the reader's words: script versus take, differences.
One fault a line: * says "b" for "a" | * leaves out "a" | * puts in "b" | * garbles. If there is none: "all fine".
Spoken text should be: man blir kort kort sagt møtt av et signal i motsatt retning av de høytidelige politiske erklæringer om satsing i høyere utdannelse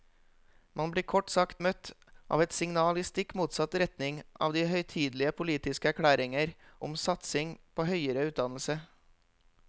* leaves out "kort"
* puts in "stikk"
* says "på" for "i"